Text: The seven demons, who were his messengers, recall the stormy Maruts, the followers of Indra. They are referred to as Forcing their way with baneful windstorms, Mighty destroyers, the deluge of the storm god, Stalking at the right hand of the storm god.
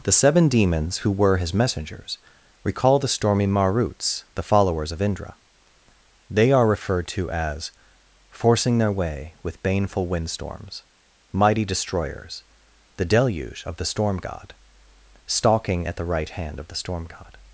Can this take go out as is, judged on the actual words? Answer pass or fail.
pass